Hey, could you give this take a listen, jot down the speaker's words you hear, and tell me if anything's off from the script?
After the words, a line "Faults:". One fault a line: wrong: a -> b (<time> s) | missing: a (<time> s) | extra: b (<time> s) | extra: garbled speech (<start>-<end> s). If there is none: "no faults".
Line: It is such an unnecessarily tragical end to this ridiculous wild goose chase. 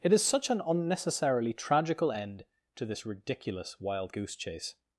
It is such an unnecessarily tragical end to this ridiculous wild goose chase.
Faults:
no faults